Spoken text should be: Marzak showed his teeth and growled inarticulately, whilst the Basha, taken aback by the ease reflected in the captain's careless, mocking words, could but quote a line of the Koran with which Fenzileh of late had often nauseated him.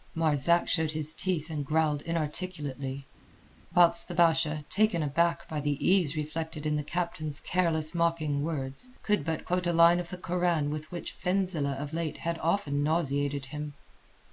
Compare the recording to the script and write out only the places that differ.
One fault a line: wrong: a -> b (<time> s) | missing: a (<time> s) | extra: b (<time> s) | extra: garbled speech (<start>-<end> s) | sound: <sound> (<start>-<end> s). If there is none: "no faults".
no faults